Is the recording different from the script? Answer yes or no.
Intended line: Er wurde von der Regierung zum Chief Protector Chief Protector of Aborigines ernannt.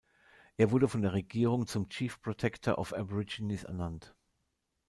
yes